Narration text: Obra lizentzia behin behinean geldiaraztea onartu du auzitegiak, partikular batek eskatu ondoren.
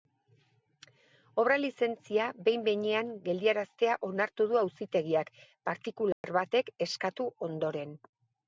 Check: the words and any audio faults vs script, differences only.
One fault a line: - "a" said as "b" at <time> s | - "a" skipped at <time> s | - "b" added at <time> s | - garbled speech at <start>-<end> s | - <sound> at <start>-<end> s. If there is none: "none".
- dropout at 6.1-6.2 s